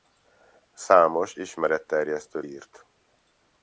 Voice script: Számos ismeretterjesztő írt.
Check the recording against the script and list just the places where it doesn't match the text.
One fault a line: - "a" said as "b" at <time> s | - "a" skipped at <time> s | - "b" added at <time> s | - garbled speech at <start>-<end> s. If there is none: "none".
none